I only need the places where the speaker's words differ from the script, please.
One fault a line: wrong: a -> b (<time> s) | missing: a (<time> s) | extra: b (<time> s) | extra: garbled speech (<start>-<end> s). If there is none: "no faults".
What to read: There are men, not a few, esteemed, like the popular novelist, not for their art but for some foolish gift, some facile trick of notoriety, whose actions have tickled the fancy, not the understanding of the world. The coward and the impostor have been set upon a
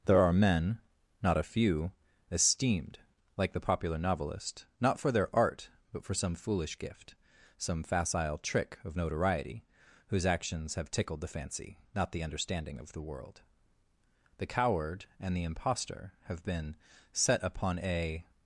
no faults